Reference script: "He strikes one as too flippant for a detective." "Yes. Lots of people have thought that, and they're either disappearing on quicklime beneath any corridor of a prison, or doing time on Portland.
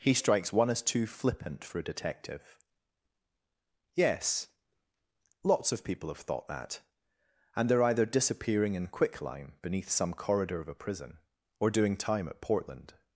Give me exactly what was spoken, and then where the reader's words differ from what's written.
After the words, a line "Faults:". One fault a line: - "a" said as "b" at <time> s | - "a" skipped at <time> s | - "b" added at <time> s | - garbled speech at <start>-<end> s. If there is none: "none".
"He strikes one as too flippant for a detective." "Yes. Lots of people have thought that, and they're either disappearing in quicklime beneath some corridor of a prison, or doing time at Portland.
Faults:
- "on" said as "in" at 8.7 s
- "any" said as "some" at 9.9 s
- "on" said as "at" at 12.3 s